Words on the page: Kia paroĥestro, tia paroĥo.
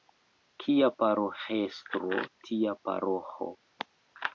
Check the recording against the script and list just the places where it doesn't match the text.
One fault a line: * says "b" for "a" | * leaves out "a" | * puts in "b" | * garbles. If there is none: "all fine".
all fine